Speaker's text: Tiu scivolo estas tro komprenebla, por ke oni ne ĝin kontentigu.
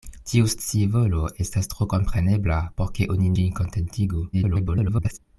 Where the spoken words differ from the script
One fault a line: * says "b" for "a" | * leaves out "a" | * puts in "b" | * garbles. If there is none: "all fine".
* leaves out "ne"
* garbles